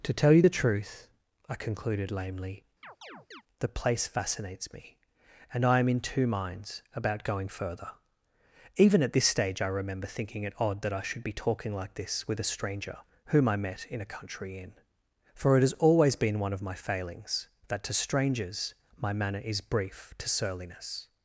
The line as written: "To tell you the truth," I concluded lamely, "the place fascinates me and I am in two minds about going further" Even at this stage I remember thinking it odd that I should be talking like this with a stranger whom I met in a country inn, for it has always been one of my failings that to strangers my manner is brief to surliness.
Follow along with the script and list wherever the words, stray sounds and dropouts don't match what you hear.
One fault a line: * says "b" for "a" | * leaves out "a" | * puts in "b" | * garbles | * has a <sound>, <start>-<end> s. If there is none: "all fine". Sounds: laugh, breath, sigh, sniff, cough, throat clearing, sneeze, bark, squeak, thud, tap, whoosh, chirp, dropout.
* has a chirp, 2.8-3.4 s